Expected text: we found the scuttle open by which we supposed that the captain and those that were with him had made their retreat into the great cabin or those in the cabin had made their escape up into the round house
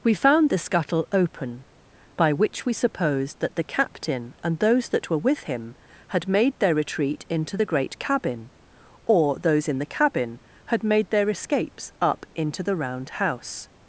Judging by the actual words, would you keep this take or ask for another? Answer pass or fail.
fail